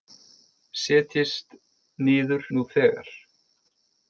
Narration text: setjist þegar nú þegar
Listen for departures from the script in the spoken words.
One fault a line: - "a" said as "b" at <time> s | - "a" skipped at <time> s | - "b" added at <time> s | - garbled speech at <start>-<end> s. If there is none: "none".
- "þegar" said as "niður" at 2.1 s